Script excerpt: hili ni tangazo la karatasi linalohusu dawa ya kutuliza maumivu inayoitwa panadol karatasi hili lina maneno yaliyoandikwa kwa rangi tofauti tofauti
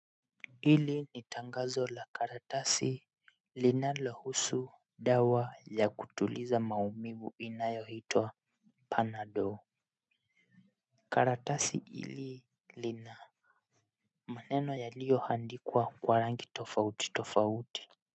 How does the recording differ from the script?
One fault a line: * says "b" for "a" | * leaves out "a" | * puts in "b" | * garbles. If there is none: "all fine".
all fine